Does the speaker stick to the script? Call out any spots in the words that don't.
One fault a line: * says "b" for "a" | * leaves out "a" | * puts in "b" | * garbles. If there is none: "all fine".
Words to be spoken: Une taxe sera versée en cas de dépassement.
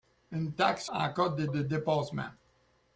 * leaves out "sera versée"
* puts in "de"